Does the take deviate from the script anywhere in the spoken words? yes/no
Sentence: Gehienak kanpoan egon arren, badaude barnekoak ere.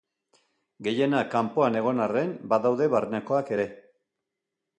no